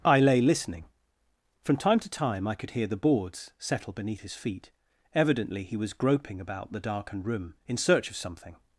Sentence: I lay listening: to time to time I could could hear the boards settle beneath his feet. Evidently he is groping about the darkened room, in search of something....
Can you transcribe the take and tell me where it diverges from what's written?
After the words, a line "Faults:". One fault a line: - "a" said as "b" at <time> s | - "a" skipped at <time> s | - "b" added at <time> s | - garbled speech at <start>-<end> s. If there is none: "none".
I lay listening: from time to time I could hear the boards settle beneath his feet. Evidently he was groping about the darkened room, in search of something....
Faults:
- "to" said as "from" at 1.6 s
- "could" skipped at 2.7 s
- "is" said as "was" at 5.8 s